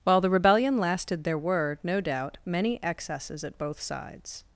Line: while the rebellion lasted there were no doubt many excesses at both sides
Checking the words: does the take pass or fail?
pass